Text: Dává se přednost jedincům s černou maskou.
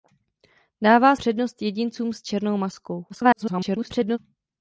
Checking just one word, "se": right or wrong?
wrong